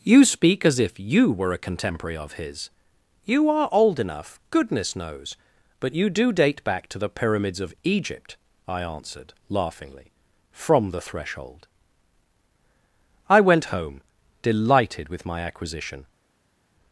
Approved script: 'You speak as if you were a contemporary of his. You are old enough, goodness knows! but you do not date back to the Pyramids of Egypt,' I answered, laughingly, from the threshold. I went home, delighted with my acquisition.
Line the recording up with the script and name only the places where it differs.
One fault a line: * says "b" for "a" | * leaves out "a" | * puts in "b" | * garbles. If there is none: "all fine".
* leaves out "not"